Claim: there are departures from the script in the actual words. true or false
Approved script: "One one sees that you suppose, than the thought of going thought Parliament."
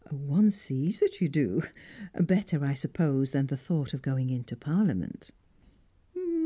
true